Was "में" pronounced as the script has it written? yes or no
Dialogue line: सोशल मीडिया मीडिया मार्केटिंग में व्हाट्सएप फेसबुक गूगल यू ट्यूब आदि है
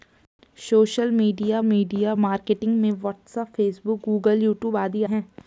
yes